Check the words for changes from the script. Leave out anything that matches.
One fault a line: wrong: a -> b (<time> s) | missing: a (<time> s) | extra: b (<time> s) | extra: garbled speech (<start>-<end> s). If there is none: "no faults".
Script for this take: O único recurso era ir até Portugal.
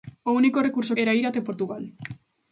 no faults